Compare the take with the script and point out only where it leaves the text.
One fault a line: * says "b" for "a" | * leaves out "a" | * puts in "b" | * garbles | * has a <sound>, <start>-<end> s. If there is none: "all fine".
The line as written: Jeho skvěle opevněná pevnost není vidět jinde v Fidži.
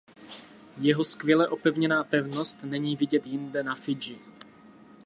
* says "na" for "v"